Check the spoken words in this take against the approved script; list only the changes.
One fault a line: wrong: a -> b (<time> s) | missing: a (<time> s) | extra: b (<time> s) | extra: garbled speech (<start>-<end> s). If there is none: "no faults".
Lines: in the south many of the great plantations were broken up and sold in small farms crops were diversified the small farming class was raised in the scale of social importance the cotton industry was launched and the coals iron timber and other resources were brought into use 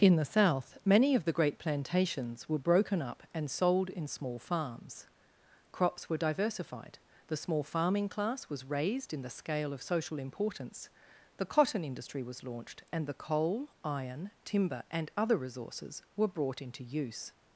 wrong: coals -> coal (13.1 s)